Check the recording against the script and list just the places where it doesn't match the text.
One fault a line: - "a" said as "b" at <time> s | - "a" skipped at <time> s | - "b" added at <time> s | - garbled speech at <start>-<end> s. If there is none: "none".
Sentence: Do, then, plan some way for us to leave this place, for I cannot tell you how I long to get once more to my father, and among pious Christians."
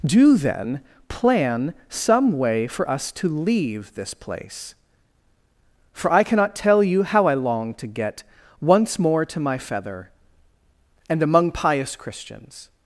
- "father" said as "feather" at 9.6 s